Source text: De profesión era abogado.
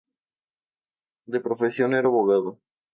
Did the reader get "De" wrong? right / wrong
right